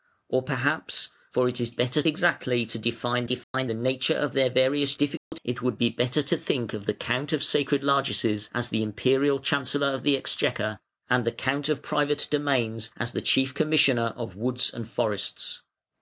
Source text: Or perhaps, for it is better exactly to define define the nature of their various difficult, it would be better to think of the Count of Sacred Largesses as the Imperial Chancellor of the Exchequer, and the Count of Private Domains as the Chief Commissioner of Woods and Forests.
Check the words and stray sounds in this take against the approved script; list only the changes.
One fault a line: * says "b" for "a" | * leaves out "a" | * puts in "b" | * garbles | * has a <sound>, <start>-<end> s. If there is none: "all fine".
* has a dropout, 3.4-3.5 s
* has a dropout, 5.2-5.3 s